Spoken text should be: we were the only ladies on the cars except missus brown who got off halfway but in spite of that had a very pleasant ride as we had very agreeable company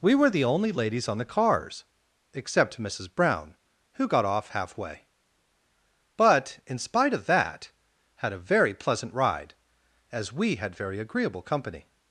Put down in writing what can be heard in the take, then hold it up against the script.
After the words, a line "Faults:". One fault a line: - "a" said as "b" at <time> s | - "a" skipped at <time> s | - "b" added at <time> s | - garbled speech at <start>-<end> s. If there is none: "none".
we were the only ladies on the cars except missus brown who got off halfway but in spite of that had a very pleasant ride as we had very agreeable company
Faults:
none